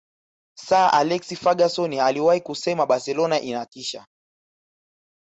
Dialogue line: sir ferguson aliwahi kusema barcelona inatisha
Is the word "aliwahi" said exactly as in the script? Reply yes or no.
yes